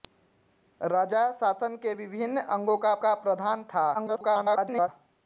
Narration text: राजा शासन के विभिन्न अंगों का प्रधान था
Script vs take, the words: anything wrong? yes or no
yes